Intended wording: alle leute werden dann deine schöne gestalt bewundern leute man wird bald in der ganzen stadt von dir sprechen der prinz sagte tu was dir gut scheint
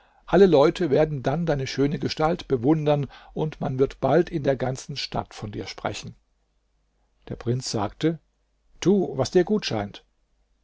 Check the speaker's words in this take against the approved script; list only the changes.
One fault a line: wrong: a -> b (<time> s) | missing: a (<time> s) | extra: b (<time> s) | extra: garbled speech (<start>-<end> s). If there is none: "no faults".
wrong: leute -> und (3.4 s)